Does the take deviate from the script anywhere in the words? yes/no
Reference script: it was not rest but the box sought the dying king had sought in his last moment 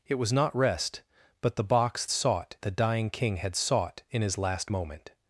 no